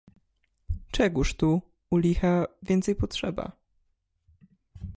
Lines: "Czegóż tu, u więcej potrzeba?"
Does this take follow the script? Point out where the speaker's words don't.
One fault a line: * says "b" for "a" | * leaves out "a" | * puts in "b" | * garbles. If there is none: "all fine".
* puts in "licha"